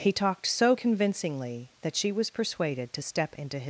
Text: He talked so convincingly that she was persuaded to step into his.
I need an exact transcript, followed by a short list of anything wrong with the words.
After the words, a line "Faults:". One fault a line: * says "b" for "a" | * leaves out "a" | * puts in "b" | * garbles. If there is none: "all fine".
He talked so convincingly that she was persuaded to step into his.
Faults:
all fine